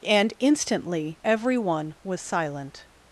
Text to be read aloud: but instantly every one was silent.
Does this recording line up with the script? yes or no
no